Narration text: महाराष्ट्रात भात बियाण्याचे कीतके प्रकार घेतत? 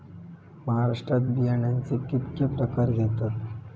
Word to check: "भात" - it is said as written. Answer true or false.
false